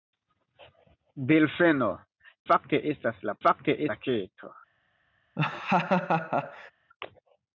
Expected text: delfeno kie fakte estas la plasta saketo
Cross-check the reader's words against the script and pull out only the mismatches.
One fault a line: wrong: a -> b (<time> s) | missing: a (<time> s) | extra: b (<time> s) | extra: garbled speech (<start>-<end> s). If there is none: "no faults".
missing: kie (1.9 s)
wrong: plasta -> fakte (3.5 s)